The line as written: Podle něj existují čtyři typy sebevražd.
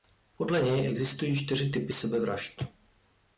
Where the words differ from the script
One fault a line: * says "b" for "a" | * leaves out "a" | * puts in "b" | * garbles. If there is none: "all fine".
all fine